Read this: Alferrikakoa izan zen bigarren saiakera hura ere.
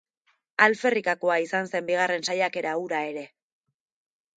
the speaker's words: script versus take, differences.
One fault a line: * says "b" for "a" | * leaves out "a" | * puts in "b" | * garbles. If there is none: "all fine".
all fine